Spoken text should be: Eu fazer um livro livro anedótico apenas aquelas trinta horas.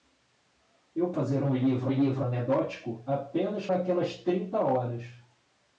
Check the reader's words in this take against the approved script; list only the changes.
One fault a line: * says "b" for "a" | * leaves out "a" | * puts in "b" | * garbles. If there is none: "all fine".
all fine